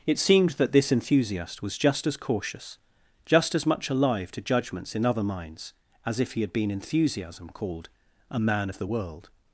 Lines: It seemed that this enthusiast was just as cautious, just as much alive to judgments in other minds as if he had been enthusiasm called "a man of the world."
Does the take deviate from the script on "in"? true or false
false